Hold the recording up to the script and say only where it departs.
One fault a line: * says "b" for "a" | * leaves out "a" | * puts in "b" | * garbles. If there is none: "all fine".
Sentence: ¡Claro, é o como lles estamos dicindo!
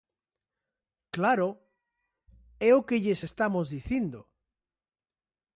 * says "que" for "como"